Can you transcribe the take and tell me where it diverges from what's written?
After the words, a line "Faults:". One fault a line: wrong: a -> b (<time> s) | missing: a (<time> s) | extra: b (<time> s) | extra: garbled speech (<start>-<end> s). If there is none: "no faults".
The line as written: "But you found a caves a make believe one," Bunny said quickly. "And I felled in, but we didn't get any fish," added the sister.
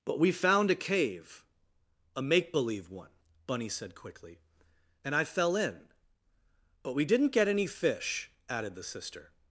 "But we found a cave a make believe one," Bunny said quickly. "And I fell in, but we didn't get any fish," added the sister.
Faults:
wrong: you -> we (0.2 s)
wrong: caves -> cave (0.8 s)
wrong: felled -> fell (5.2 s)